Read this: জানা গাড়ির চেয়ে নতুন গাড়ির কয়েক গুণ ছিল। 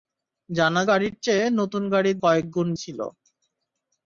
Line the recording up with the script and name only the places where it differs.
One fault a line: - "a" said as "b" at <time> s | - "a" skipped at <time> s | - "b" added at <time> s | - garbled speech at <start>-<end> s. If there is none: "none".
none